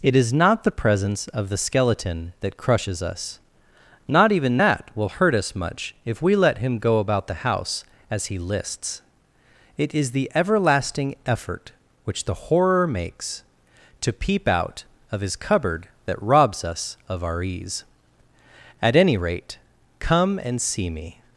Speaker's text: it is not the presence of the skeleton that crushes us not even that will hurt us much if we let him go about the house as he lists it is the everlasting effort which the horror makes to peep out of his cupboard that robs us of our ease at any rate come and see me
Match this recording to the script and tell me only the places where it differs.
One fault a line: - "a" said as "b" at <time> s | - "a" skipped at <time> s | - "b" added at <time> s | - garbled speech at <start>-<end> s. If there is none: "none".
none